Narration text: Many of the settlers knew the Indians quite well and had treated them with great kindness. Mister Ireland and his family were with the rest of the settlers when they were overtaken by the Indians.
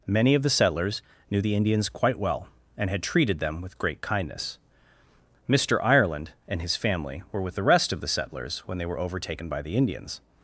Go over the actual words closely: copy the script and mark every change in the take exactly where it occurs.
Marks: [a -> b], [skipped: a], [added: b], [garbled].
Many of the settlers knew the Indians quite well and had treated them with great kindness. Mister Ireland and his family were with the rest of the settlers when they were overtaken by the Indians.